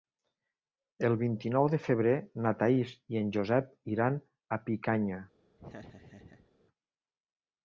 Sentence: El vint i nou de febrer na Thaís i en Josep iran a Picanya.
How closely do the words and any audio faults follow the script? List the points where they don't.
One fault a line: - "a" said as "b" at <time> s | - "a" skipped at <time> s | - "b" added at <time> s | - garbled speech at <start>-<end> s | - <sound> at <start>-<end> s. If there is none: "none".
- laugh at 5.6-6.5 s